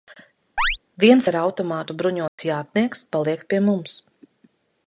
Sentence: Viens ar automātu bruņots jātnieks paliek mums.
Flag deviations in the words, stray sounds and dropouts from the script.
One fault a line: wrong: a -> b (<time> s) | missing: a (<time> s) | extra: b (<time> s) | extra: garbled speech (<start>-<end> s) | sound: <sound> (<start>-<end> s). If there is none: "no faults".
sound: chirp (0.6-0.8 s)
sound: dropout (2.3-2.4 s)
extra: pie (3.5 s)